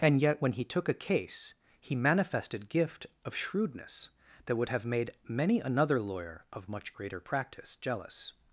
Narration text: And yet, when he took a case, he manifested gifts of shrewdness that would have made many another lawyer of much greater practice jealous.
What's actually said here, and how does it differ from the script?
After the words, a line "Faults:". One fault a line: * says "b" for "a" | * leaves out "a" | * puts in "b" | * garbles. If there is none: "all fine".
And yet, when he took a case, he manifested gift of shrewdness that would have made many another lawyer of much greater practice jealous.
Faults:
* says "gift" for "gifts"